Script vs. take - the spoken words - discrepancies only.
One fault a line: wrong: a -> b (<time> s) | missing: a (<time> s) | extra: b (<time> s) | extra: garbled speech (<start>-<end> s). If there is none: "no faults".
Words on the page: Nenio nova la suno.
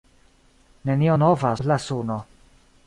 no faults